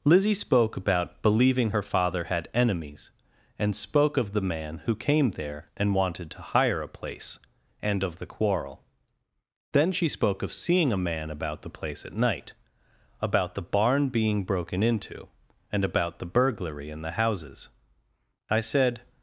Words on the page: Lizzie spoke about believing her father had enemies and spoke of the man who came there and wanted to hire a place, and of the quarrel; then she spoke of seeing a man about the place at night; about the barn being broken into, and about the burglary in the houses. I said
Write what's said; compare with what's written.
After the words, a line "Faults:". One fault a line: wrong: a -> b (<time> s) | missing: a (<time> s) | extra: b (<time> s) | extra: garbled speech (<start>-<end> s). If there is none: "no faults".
Lizzie spoke about believing her father had enemies and spoke of the man who came there and wanted to hire a place, and of the quarrel; then she spoke of seeing a man about the place at night; about the barn being broken into, and about the burglary in the houses. I said
Faults:
no faults